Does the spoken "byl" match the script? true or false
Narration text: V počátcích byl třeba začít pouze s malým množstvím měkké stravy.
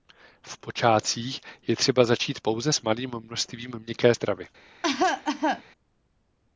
false